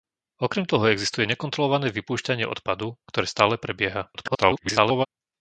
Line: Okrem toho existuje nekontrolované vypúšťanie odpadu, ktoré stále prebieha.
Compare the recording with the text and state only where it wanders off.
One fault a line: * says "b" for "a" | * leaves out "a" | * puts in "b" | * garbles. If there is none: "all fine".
* garbles